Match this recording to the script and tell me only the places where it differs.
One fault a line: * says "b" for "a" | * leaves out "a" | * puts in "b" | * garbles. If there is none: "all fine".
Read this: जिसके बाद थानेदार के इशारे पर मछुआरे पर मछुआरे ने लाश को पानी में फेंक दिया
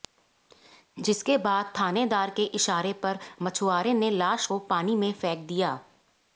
* leaves out "पर मछुआरे"